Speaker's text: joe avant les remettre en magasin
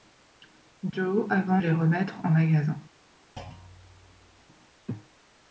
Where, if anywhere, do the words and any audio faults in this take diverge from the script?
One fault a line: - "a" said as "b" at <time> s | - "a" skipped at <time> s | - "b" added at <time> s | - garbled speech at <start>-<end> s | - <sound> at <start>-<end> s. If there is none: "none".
- thud at 3.4-4.5 s